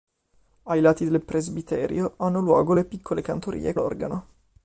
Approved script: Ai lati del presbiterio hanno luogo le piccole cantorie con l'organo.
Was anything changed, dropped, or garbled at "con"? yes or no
yes